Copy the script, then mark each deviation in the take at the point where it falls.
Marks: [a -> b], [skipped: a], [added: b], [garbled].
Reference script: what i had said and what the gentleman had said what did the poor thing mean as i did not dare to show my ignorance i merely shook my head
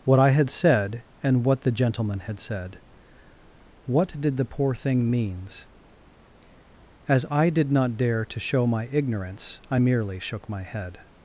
what i had said and what the gentleman had said what did the poor thing [mean -> means] as i did not dare to show my ignorance i merely shook my head